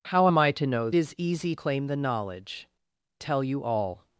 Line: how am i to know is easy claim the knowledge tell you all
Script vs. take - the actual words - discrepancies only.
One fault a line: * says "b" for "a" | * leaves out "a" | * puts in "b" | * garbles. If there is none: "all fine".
all fine